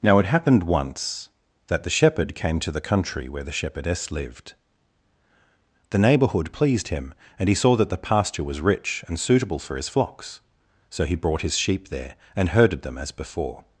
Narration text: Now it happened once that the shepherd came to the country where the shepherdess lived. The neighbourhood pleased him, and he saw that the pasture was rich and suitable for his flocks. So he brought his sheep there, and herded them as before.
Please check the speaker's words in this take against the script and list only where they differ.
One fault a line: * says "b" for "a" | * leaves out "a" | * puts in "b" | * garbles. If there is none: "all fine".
all fine